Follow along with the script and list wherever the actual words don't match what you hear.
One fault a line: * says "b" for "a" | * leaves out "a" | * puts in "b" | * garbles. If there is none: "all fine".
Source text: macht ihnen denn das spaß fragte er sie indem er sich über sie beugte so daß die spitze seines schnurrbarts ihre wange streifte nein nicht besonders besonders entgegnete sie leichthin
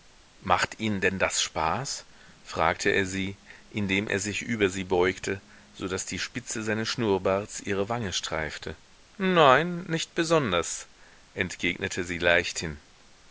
* leaves out "besonders"